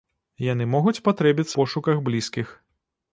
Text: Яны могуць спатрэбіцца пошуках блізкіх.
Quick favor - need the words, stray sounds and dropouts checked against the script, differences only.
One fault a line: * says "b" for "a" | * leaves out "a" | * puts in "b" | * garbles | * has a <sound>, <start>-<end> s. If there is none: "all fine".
all fine